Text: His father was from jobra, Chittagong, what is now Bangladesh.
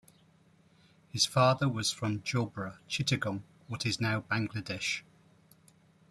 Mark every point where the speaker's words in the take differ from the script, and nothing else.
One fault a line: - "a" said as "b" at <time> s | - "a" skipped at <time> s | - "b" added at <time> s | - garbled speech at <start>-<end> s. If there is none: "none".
none